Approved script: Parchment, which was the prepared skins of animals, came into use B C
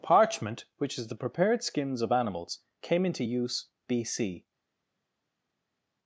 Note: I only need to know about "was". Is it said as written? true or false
false